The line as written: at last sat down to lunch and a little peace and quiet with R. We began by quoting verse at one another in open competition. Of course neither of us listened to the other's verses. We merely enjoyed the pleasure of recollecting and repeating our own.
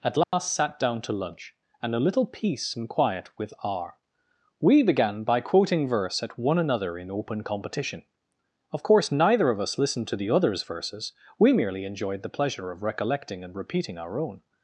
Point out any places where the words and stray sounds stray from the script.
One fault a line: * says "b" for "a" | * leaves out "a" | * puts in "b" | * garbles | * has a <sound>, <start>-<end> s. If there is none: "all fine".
* has a dropout, 0.2-0.3 s